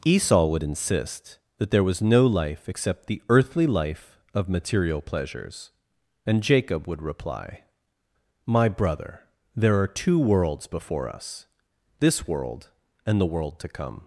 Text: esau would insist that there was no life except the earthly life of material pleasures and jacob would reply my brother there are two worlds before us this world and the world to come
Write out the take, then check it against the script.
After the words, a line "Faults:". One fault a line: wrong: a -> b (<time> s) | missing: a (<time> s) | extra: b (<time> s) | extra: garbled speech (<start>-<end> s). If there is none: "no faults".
esau would insist that there was no life except the earthly life of material pleasures and jacob would reply my brother there are two worlds before us this world and the world to come
Faults:
no faults